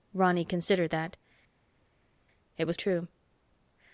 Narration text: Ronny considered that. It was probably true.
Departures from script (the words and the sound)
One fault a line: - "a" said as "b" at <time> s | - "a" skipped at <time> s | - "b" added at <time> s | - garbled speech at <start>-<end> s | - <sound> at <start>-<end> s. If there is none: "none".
- "probably" skipped at 2.8 s